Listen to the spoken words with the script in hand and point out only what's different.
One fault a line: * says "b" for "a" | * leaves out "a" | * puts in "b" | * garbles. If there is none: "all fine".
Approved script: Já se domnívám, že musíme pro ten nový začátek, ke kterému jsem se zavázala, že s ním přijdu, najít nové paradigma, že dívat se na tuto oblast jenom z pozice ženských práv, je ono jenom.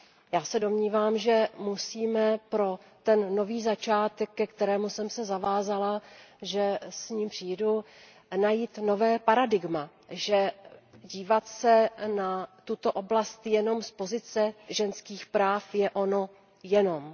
all fine